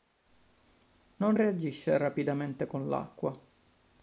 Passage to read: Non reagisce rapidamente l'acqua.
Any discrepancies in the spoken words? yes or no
yes